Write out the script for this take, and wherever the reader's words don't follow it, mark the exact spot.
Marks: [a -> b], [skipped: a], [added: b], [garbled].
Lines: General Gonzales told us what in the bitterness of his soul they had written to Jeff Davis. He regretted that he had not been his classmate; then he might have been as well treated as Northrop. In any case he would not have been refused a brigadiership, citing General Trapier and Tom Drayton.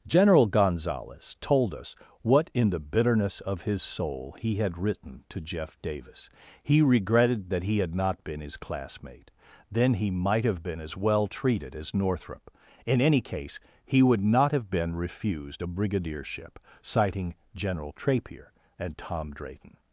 General Gonzales told us what in the bitterness of his soul [they -> he] had written to Jeff Davis. He regretted that he had not been his classmate; then he might have been as well treated as Northrop. In any case he would not have been refused a brigadiership, citing General Trapier and Tom Drayton.